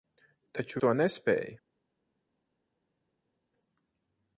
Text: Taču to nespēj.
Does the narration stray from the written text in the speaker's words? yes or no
no